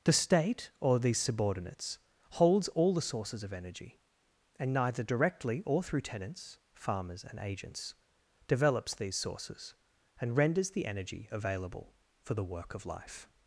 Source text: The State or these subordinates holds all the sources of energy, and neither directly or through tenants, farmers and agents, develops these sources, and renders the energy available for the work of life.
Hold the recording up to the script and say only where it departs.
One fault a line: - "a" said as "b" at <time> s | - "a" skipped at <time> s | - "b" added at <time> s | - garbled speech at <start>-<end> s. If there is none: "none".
none